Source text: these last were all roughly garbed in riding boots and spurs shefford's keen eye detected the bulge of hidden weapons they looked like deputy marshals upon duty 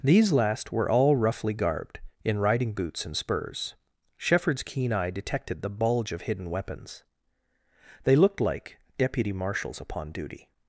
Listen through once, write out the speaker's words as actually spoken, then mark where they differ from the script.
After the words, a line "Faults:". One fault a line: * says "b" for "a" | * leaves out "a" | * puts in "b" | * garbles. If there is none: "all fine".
these last were all roughly garbed in riding boots and spurs shefford's keen eye detected the bulge of hidden weapons they looked like deputy marshals upon duty
Faults:
all fine